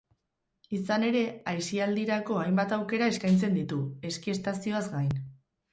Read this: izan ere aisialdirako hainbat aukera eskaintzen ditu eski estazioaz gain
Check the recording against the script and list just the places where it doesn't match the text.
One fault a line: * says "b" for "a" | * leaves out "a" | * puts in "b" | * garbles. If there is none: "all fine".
all fine